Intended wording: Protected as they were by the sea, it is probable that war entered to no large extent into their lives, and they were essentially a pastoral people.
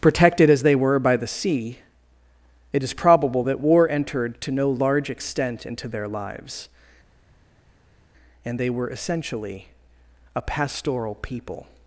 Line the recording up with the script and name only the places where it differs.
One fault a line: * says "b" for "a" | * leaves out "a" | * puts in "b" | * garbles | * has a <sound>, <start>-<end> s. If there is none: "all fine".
all fine